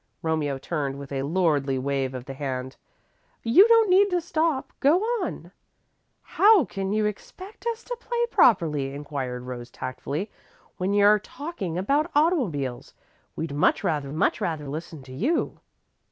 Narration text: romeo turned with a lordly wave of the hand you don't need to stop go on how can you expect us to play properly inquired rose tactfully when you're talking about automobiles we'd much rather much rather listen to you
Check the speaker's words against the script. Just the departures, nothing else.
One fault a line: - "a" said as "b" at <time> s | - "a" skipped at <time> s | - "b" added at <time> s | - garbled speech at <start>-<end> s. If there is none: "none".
none